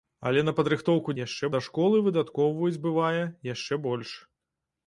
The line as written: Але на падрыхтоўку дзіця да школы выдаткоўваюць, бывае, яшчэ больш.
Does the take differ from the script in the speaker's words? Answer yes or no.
yes